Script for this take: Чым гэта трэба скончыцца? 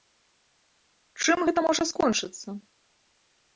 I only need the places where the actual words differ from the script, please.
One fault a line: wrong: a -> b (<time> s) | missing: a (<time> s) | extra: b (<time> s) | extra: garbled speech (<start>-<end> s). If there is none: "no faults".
wrong: трэба -> можа (1.7 s)